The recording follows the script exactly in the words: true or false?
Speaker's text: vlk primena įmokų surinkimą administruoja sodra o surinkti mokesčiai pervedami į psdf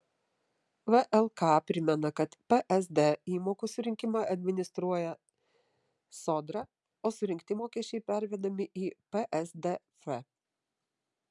false